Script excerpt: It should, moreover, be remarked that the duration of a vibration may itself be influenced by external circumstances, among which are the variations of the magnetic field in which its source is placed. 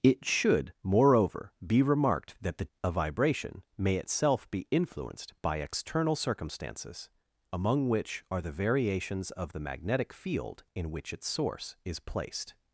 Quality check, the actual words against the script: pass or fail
fail